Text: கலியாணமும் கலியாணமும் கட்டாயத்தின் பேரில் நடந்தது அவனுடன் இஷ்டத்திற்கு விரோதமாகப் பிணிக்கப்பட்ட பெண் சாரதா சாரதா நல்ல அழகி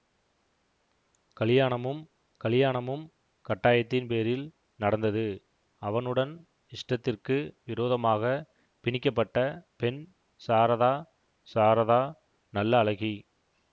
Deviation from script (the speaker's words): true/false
false